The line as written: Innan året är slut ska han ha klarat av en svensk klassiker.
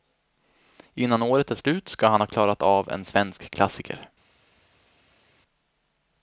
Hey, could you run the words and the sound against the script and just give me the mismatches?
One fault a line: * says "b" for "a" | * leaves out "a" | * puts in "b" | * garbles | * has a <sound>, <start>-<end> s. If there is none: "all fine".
all fine